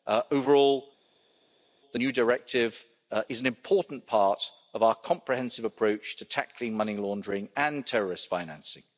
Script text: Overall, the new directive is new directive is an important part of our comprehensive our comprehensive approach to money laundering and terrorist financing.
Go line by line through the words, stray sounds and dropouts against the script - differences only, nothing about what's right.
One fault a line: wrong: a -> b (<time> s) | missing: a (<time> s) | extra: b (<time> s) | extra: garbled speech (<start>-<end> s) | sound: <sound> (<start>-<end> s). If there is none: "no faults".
missing: new directive is (3.4 s)
missing: our comprehensive (5.6 s)
extra: tackling (6.2 s)